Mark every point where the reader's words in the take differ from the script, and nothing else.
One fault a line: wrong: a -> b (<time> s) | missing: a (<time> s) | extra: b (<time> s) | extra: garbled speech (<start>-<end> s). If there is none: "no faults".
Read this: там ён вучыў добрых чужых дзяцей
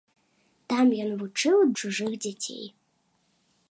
missing: добрых (1.6 s)